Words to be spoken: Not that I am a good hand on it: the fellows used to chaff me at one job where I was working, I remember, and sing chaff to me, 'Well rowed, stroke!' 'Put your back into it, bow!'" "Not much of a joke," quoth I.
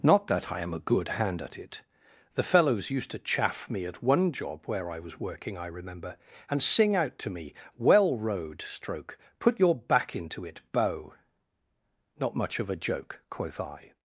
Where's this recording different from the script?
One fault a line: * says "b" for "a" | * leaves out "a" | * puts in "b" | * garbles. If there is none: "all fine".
* says "at" for "on"
* says "out" for "chaff"